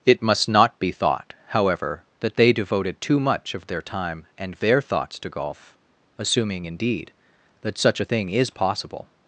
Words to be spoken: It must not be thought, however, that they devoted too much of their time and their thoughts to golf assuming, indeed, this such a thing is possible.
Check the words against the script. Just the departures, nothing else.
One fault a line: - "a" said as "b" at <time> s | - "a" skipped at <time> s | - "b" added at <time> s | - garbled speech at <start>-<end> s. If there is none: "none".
- "this" said as "that" at 7.6 s